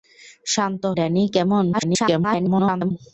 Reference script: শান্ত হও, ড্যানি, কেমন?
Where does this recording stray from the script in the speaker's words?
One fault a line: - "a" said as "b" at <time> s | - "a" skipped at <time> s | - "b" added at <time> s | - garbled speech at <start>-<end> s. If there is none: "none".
- "হও" skipped at 0.8 s
- garbled speech at 1.7-2.9 s